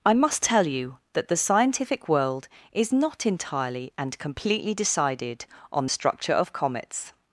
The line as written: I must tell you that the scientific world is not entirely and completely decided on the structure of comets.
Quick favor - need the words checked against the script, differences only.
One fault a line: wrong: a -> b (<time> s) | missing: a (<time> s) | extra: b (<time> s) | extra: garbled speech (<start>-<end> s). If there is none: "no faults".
missing: the (5.8 s)